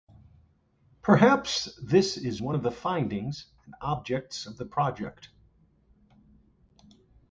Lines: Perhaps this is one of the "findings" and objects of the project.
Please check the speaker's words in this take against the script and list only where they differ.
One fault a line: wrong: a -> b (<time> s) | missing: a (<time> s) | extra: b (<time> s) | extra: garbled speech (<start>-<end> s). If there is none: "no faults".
no faults